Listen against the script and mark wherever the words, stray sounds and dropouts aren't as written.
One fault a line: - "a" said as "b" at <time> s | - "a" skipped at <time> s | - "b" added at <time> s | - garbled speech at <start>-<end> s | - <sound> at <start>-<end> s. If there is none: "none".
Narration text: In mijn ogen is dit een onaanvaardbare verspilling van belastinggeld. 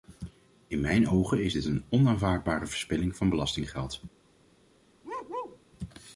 - bark at 5.0-5.6 s